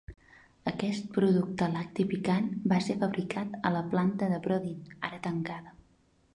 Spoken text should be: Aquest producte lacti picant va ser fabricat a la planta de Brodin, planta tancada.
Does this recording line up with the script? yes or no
no